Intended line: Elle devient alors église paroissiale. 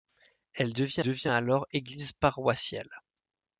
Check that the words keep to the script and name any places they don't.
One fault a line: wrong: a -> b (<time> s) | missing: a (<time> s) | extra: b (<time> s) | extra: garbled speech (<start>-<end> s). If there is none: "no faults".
extra: devient (1.0 s)